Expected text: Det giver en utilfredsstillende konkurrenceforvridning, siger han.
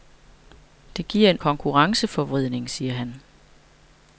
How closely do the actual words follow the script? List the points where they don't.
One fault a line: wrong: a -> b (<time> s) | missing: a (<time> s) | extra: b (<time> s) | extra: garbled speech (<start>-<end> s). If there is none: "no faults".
missing: utilfredsstillende (1.4 s)